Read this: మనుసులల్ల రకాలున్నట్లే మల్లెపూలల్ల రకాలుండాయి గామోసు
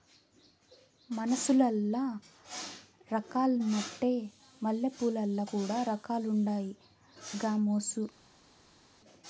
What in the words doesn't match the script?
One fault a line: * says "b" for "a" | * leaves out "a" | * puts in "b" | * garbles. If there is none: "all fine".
* puts in "కూడా"